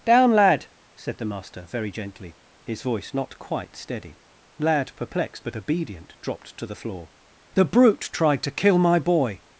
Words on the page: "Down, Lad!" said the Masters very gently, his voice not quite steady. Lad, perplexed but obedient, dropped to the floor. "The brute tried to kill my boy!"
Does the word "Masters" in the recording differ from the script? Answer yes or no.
yes